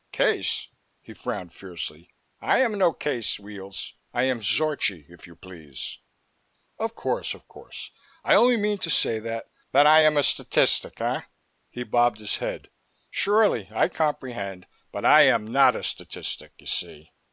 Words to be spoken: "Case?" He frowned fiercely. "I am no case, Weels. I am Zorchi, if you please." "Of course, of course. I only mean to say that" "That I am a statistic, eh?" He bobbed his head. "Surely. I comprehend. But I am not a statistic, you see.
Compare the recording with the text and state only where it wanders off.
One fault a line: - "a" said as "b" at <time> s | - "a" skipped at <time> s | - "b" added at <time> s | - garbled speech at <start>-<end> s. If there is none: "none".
none